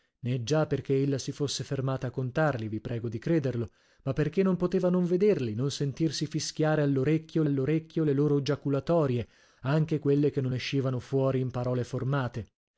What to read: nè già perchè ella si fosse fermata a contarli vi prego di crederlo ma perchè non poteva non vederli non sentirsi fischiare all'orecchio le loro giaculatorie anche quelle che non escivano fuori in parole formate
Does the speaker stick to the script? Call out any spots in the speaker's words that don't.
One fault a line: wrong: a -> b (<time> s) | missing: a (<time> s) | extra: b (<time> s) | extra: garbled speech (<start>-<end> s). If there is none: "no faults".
extra: all'orecchio (7.4 s)